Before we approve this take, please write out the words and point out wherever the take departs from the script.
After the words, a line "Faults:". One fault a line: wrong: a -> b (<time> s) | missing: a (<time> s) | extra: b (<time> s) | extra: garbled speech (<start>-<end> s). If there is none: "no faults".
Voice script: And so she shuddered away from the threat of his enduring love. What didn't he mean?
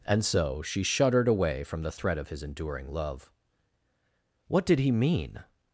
And so she shuddered away from the threat of his enduring love. What did he mean?
Faults:
wrong: didn't -> did (4.7 s)